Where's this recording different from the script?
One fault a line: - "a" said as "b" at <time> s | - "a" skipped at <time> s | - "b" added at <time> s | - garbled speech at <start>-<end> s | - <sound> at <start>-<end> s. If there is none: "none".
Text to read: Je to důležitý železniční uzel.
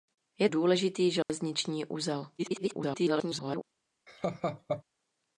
- "to" skipped at 0.5 s
- dropout at 1.2-1.3 s
- garbled speech at 2.4-3.6 s
- laugh at 4.1-4.8 s